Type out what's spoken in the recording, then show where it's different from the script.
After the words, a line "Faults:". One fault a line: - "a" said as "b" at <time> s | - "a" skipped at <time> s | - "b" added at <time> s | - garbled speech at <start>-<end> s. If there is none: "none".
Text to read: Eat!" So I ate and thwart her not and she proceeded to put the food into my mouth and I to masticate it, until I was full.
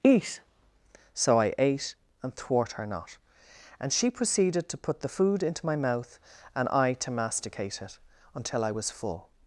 Eat!" So I ate and thwart her not and she proceeded to put the food into my mouth and I to masticate it, until I was full.
Faults:
none